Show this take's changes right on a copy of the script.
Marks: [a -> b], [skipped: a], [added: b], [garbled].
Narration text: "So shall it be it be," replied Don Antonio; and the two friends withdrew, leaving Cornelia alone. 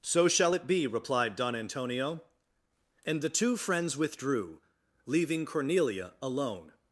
"So shall it be [skipped: it be,"] replied Don Antonio; and the two friends withdrew, leaving Cornelia alone.